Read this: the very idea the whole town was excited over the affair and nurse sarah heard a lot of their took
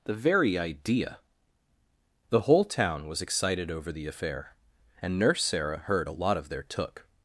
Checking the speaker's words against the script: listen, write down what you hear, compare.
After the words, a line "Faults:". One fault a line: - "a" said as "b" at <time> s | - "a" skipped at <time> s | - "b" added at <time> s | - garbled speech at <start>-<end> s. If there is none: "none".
the very idea the whole town was excited over the affair and nurse sarah heard a lot of their took
Faults:
none